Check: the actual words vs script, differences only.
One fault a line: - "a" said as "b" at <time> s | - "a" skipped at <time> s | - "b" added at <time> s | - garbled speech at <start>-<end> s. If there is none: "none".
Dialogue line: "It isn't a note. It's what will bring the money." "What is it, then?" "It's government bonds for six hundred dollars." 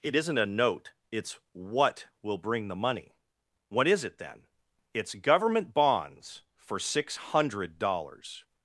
none